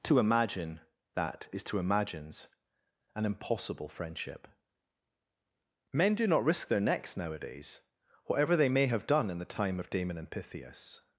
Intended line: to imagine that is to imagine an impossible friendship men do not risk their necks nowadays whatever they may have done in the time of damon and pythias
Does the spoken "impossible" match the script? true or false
true